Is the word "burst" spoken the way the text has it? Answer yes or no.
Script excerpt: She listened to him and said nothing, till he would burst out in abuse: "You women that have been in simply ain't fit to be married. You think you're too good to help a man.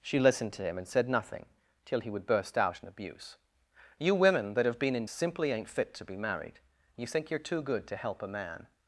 yes